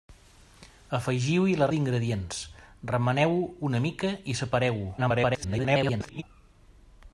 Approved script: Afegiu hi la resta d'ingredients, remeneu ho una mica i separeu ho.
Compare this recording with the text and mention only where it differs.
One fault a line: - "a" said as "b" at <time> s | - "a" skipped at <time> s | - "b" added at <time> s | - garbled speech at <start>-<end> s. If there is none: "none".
- "resta" skipped at 1.7 s
- garbled speech at 5.0-6.2 s